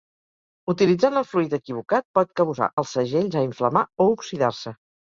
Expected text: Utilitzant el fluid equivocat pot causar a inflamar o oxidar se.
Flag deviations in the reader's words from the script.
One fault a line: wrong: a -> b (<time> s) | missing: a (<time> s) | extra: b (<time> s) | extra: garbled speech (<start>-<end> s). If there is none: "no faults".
extra: els segells (2.8 s)